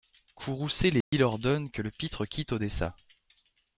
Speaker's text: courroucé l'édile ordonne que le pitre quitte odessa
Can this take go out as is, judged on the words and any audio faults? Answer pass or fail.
fail